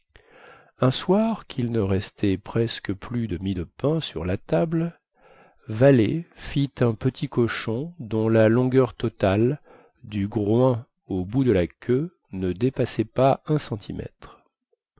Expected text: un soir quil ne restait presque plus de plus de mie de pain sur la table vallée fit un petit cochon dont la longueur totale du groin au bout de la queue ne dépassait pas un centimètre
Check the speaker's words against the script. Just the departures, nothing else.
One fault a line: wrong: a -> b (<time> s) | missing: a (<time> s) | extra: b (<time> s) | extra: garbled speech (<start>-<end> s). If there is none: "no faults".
missing: plus de (3.4 s)